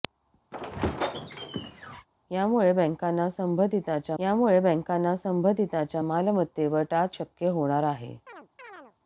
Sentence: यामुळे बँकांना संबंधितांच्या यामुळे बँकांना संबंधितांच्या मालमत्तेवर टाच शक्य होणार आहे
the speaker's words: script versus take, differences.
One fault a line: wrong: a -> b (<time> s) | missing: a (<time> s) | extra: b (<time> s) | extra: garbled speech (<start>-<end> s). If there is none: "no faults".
no faults